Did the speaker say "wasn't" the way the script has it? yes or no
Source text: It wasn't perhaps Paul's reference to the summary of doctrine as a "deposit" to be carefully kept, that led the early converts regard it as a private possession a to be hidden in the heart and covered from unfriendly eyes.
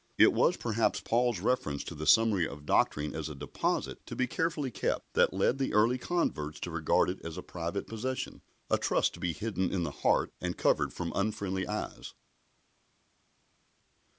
no